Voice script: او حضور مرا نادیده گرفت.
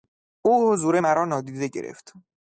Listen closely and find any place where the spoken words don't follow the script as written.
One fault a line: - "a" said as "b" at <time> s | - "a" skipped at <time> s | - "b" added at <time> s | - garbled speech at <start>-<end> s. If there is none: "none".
none